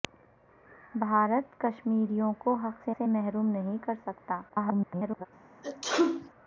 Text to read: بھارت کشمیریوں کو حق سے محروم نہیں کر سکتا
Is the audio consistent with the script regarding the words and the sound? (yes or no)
no